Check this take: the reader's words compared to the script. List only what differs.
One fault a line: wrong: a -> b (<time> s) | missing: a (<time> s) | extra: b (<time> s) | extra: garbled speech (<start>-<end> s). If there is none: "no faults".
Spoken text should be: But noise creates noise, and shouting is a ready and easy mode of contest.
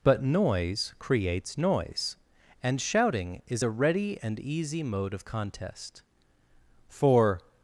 extra: For (6.9 s)